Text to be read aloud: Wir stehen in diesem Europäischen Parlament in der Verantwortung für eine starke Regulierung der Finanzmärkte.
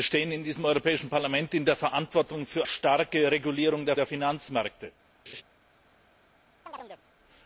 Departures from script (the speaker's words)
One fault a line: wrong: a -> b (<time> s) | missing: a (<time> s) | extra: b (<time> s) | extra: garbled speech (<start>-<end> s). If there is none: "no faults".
missing: eine (2.6 s)
extra: der (3.9 s)